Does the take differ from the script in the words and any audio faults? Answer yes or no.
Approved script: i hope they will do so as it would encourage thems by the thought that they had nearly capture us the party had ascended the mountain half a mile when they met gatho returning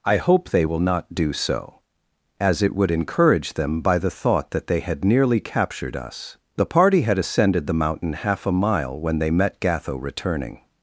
yes